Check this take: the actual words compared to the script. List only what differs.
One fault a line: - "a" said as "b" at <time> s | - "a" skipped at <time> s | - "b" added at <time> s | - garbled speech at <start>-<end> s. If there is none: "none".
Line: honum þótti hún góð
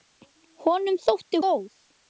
- "hún" skipped at 1.4 s